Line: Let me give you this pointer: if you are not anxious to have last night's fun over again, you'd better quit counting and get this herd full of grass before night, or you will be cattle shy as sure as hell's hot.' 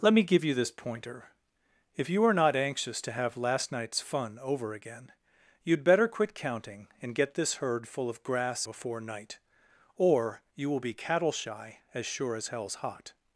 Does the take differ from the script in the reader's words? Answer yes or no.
no